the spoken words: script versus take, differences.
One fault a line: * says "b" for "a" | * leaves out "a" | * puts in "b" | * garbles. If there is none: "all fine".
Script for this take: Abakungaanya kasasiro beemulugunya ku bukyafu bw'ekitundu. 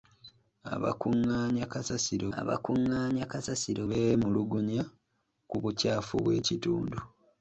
* puts in "abakungaanya kasasiro"